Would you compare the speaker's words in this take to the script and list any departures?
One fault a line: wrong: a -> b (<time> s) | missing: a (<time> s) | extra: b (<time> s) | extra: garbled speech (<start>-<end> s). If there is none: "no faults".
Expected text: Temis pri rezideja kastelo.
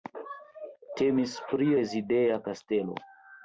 no faults